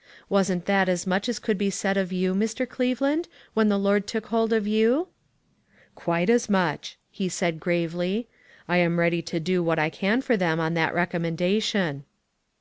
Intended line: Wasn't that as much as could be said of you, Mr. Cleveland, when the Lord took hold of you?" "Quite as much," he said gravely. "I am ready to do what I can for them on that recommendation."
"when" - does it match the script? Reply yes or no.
yes